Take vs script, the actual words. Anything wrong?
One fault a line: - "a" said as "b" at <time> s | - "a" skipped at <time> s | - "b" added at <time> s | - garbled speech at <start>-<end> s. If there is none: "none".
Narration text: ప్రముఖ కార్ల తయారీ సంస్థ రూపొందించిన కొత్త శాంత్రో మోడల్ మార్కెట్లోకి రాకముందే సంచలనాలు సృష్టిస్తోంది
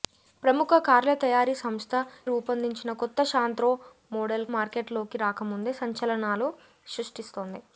none